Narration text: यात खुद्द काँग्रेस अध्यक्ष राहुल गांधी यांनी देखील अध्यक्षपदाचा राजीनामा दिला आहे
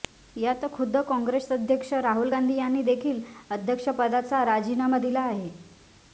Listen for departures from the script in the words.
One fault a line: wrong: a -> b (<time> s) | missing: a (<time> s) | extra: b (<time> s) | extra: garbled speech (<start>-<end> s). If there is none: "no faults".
no faults